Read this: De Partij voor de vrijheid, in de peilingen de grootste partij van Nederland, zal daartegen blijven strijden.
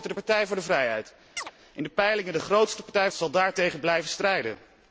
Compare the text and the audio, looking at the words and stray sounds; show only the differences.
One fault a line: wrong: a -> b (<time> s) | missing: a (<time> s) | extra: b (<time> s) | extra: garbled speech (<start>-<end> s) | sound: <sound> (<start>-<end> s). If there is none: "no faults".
sound: chirp (1.4-1.5 s)
missing: van Nederland (3.1 s)